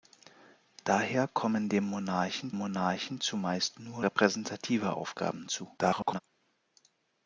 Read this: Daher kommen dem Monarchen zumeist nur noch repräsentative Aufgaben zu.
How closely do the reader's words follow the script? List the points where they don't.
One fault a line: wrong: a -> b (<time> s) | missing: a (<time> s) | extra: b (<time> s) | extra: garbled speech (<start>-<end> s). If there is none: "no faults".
extra: Monarchen (2.5 s)
missing: noch (4.0 s)
extra: garbled speech (5.8-6.2 s)